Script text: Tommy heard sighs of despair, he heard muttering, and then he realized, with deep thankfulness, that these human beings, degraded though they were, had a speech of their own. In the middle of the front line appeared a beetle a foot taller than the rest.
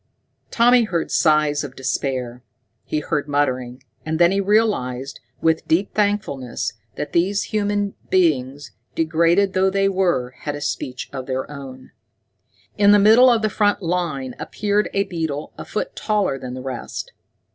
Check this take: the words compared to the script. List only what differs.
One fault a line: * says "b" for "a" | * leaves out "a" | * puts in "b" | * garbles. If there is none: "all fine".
all fine